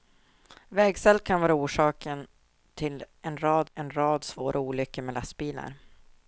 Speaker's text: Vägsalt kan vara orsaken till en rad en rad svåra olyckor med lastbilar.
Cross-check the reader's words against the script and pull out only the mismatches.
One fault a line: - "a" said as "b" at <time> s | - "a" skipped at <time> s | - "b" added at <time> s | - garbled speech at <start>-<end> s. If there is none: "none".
none